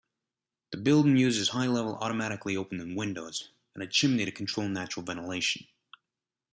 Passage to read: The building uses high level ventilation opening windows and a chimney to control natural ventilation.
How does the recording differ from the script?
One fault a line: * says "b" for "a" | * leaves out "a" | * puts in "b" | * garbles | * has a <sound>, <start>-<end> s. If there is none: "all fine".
* says "automatically" for "ventilation"